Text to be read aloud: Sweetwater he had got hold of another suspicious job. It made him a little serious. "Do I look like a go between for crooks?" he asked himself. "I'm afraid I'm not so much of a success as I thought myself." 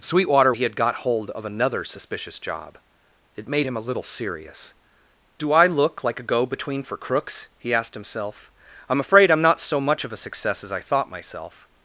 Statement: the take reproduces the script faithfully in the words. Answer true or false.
true